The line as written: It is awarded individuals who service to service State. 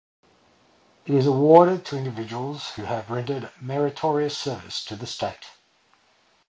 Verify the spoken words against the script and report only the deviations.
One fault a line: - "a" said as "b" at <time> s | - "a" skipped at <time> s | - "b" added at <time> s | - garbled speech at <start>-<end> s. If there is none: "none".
- "to" added at 1.9 s
- "have rendered meritorious" added at 2.9 s
- "service" said as "the" at 5.0 s